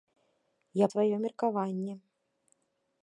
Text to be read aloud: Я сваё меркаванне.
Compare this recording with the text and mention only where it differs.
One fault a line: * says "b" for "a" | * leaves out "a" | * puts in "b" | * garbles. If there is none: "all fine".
all fine